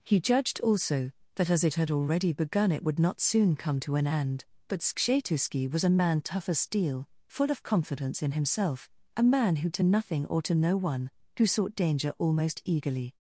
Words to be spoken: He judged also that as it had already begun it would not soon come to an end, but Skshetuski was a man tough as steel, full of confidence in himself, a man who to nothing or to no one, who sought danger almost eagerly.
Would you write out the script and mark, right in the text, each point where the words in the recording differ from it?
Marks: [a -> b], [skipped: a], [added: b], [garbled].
He judged also that as it had already begun it would not soon come to an end, but Skshetuski was a man tough as steel, full of confidence in himself, a man who to nothing or to no one, who sought danger almost eagerly.